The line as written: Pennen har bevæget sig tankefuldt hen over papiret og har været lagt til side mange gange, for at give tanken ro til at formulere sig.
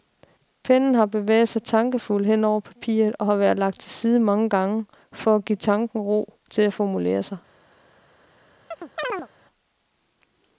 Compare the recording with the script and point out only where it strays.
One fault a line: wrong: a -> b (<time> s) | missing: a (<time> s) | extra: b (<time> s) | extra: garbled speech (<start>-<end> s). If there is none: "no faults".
no faults